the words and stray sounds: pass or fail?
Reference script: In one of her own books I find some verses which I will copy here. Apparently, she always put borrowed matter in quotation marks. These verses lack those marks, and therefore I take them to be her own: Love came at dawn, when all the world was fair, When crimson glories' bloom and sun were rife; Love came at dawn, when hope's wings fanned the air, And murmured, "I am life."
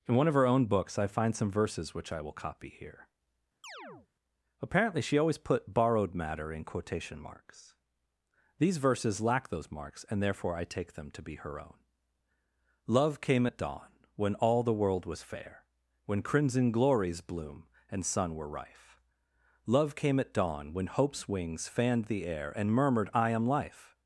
fail